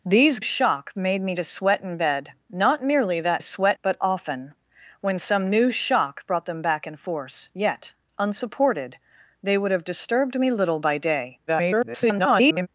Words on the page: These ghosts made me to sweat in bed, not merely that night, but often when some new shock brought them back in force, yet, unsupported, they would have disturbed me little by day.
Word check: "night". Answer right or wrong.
wrong